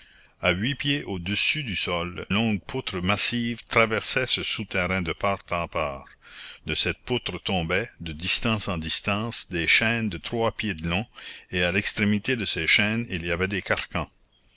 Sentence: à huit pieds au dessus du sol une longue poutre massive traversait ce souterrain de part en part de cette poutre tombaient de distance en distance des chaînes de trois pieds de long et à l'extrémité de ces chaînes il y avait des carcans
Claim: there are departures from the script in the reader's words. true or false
true